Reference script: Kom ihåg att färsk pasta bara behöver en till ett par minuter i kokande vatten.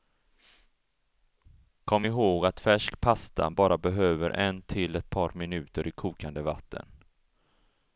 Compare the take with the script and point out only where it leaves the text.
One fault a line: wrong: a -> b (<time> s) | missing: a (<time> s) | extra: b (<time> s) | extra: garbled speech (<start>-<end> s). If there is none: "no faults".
no faults